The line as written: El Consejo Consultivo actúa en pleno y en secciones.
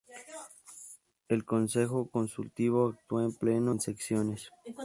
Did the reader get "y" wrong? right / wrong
wrong